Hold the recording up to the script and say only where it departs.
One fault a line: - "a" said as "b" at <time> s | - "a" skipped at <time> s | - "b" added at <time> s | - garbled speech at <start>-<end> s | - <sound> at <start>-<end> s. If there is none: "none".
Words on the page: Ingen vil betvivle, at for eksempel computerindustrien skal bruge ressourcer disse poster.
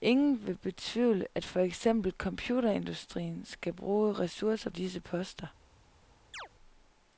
- chirp at 6.3-6.5 s